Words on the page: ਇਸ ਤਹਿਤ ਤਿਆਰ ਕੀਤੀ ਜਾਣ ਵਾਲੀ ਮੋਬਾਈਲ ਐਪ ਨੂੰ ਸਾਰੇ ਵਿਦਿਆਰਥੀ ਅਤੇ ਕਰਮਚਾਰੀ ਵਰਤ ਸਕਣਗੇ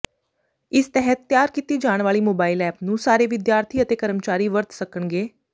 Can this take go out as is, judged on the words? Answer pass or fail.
pass